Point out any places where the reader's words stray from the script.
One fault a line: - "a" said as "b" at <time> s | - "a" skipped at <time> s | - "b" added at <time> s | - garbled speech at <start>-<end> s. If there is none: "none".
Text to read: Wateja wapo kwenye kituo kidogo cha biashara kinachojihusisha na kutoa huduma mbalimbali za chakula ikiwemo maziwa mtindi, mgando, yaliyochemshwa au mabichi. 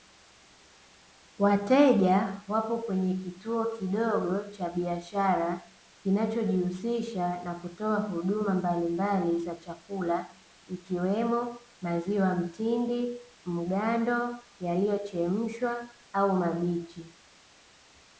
none